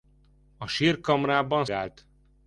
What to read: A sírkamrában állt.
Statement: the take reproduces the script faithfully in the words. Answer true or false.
true